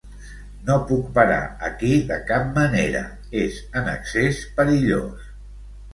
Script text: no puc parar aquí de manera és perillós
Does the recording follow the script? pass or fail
fail